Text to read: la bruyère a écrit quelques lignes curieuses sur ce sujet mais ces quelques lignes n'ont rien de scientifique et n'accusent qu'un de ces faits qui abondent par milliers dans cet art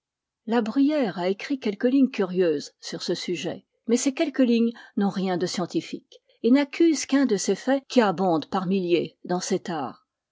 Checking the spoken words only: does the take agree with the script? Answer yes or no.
yes